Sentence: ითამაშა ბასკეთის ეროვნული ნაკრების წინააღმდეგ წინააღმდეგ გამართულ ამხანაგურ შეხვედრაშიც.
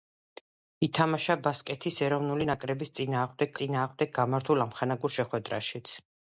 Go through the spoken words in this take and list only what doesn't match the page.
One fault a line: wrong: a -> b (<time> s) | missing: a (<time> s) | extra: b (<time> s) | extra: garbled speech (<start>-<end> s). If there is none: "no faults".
no faults